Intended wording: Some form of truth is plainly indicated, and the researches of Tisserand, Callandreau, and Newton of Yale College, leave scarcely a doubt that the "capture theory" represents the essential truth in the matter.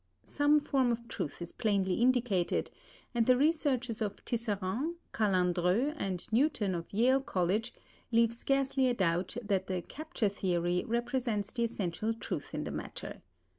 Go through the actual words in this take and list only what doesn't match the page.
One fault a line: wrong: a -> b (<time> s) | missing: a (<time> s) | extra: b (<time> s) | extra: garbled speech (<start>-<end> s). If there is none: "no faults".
no faults